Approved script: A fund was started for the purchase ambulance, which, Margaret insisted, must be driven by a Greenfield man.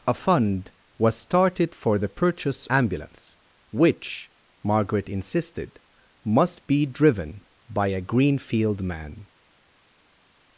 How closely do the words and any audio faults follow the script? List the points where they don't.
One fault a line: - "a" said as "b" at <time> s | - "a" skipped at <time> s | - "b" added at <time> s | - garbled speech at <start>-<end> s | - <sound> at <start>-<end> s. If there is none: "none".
none